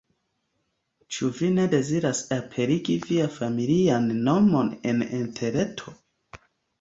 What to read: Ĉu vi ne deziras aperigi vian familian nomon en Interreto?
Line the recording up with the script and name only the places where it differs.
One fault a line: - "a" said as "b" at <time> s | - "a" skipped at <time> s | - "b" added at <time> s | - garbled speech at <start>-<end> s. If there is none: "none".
none